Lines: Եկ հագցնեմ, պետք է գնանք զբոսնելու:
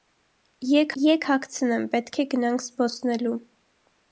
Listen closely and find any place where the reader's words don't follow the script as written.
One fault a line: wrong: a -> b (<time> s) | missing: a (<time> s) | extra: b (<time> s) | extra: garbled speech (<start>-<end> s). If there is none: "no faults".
extra: եկ (1.0 s)